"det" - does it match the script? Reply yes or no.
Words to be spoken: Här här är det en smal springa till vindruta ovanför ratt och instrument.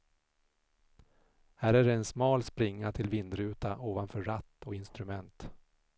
yes